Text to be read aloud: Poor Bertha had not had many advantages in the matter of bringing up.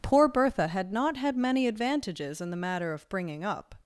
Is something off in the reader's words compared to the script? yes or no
no